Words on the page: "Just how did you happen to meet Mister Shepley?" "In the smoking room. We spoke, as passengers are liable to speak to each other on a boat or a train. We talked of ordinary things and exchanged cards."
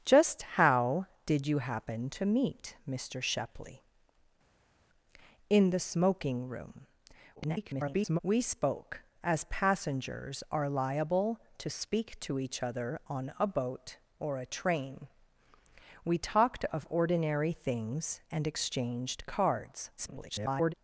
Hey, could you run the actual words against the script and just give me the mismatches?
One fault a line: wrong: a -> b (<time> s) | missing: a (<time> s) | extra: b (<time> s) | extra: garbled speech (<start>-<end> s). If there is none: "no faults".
extra: garbled speech (7.4-8.2 s)
extra: garbled speech (20.0-20.7 s)